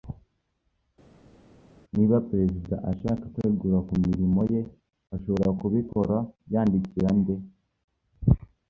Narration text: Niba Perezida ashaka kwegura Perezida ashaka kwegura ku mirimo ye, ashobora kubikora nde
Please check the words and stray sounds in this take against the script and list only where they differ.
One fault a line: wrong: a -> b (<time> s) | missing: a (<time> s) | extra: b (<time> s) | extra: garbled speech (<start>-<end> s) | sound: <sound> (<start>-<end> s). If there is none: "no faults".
missing: Perezida ashaka kwegura (3.8 s)
extra: yandikira (6.5 s)